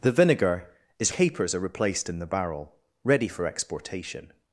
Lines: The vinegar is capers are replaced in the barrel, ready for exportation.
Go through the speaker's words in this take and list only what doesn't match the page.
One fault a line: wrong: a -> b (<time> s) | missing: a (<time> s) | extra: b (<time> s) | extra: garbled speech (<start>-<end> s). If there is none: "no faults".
no faults